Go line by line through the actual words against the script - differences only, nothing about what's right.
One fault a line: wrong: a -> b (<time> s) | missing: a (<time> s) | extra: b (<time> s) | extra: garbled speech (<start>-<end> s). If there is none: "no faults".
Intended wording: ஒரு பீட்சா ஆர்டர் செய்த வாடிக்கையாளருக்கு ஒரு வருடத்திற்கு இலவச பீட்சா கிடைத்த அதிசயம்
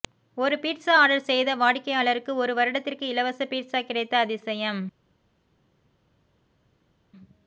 no faults